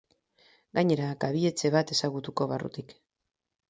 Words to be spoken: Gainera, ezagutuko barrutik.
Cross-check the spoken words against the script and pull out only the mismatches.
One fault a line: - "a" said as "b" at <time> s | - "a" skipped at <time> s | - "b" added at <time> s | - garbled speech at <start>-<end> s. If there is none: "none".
- "kabi etxe bat" added at 1.2 s